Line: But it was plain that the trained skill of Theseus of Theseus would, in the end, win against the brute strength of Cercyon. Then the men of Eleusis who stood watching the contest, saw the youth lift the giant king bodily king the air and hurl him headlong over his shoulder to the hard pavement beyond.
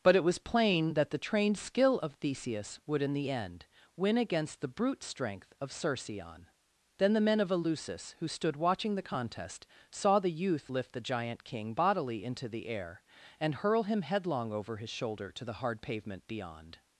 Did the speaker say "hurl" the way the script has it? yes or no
yes